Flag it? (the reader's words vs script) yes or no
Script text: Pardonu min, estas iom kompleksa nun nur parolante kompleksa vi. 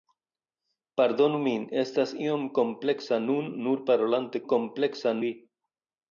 no